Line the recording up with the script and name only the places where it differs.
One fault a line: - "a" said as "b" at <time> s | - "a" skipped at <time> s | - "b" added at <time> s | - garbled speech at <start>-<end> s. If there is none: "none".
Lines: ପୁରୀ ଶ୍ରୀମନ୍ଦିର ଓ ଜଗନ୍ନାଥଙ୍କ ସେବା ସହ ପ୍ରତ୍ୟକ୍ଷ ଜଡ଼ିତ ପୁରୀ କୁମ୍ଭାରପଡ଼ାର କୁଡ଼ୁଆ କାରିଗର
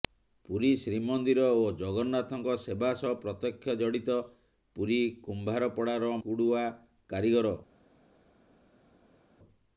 none